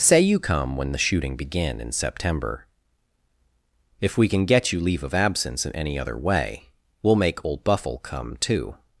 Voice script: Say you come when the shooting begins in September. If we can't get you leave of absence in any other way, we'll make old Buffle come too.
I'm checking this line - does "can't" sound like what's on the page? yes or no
no